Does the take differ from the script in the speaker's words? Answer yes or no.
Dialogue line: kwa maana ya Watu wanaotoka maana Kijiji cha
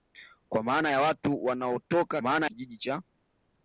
no